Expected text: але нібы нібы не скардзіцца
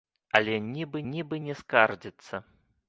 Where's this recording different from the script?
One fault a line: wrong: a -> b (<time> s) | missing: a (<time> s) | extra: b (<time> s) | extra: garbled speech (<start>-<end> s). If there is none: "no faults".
no faults